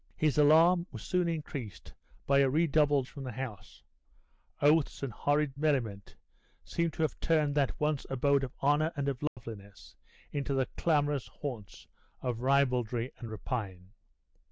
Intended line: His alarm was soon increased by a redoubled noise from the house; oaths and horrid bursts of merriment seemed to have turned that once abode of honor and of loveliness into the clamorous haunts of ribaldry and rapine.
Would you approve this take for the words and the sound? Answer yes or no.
no